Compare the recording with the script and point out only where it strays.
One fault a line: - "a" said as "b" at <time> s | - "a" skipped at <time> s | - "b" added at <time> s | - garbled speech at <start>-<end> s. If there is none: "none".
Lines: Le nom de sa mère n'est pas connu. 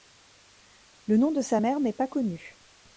none